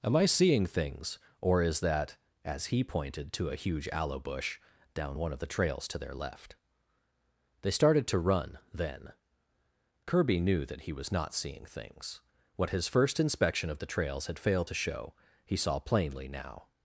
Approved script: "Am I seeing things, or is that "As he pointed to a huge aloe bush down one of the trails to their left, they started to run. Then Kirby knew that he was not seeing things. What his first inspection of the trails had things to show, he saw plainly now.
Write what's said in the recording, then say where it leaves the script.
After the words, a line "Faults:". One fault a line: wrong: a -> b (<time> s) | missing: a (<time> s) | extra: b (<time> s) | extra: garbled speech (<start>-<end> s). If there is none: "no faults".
"Am I seeing things, or is that "As he pointed to a huge aloe bush down one of the trails to their left, they started to run. Then Kirby knew that he was not seeing things. What his first inspection of the trails had failed to show, he saw plainly now.
Faults:
wrong: things -> failed (14.4 s)